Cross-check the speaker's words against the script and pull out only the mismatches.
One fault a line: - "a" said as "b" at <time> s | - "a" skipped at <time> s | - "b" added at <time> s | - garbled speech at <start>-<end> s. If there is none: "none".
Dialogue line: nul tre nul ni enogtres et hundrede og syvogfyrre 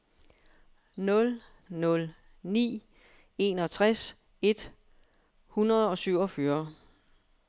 - "tre" skipped at 1.4 s